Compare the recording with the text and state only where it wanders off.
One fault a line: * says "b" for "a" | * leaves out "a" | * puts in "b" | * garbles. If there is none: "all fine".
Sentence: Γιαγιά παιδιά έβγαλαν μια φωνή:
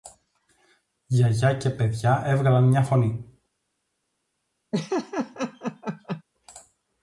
* puts in "και"